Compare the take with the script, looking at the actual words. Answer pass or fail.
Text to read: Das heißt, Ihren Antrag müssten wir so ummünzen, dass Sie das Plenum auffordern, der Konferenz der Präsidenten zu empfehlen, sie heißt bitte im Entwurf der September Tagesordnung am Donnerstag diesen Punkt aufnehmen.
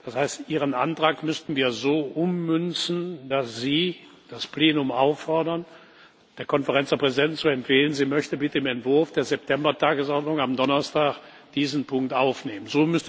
fail